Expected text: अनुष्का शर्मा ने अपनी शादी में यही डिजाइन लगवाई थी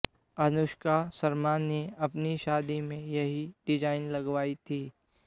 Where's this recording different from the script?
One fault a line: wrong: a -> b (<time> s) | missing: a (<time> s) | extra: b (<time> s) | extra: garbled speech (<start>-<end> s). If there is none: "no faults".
no faults